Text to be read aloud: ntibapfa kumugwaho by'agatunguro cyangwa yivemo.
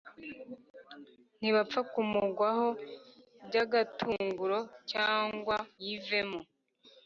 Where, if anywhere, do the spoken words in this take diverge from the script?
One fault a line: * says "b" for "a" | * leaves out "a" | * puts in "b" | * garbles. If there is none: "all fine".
all fine